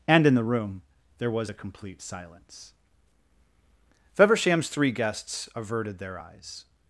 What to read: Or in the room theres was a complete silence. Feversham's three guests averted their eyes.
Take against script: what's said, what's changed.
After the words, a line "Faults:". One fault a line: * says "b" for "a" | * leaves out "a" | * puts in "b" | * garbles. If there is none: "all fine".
And in the room there was a complete silence. Feversham's three guests averted their eyes.
Faults:
* says "And" for "Or"
* says "there" for "theres"